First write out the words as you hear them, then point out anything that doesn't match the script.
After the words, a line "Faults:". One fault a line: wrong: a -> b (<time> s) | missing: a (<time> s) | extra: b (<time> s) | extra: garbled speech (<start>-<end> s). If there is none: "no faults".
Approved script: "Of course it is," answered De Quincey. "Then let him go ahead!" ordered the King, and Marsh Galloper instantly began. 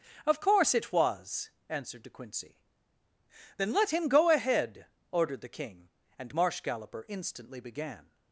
"Of course it was," answered De Quincey. "Then let him go ahead!" ordered the King, and Marsh Galloper instantly began.
Faults:
wrong: is -> was (0.9 s)